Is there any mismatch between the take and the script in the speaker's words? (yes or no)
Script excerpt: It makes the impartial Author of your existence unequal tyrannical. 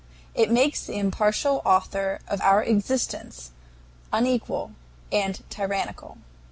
yes